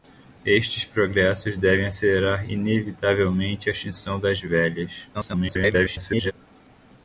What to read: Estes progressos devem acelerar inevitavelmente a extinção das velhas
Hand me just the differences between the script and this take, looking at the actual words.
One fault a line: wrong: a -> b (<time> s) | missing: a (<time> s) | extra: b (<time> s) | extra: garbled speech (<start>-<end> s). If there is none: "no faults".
extra: garbled speech (5.1-6.3 s)